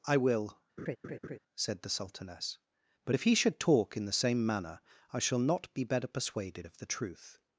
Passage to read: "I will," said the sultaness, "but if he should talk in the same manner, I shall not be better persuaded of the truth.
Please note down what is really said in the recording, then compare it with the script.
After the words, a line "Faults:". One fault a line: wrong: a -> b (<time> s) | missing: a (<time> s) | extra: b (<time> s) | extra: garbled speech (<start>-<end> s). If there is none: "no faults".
"I will," said the sultaness, "but if he should talk in the same manner, I shall not be better persuaded of the truth.
Faults:
no faults